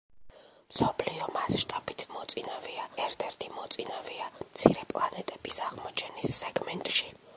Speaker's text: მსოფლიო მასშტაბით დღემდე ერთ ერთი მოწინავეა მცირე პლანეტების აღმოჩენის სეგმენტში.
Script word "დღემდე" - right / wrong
wrong